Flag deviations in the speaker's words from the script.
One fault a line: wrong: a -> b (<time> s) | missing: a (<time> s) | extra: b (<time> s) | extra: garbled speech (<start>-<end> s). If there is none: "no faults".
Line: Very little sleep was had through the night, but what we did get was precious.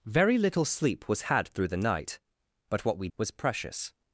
missing: did get (3.1 s)